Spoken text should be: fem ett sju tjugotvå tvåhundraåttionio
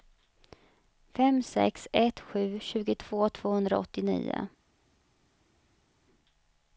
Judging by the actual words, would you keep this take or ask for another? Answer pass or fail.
fail